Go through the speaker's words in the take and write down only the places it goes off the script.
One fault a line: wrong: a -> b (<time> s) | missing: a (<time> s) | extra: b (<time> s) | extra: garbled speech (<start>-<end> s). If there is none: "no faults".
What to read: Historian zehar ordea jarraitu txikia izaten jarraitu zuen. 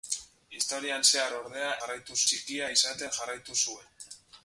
no faults